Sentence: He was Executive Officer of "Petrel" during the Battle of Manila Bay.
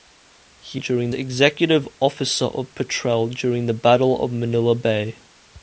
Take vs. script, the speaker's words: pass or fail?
fail